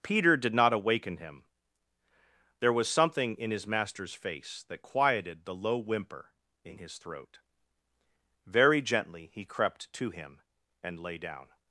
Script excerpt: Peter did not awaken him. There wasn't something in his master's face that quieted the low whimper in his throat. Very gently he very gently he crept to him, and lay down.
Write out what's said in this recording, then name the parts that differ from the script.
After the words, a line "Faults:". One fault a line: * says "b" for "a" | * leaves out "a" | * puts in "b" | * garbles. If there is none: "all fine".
Peter did not awaken him. There was something in his master's face that quieted the low whimper in his throat. Very gently he crept to him, and lay down.
Faults:
* says "was" for "wasn't"
* leaves out "very gently he"